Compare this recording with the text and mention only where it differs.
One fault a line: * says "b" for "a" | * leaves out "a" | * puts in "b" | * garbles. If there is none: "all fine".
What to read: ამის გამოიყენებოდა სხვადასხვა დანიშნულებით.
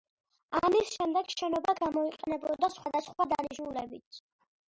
* puts in "შემდეგ შენობა"